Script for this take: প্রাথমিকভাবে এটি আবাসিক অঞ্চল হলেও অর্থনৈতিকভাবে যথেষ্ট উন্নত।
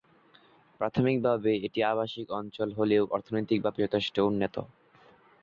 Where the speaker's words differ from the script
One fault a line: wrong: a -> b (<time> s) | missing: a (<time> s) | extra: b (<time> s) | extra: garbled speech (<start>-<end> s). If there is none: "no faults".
no faults